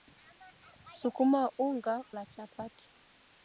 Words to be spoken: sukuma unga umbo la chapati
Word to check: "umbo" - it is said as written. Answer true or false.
false